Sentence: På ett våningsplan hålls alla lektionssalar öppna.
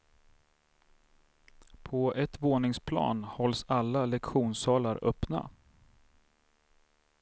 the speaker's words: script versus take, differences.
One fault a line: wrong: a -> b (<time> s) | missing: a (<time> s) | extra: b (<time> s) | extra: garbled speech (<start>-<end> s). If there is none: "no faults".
no faults